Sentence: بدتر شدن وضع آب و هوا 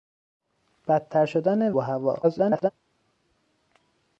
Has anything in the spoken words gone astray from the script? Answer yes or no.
yes